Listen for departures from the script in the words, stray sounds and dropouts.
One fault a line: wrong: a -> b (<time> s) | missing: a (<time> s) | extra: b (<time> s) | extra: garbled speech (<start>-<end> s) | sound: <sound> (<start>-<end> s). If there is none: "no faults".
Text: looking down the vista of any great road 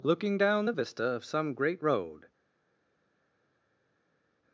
wrong: any -> some (1.2 s)